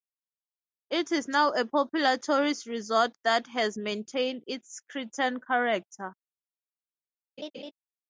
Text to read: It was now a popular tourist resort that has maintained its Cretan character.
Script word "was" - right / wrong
wrong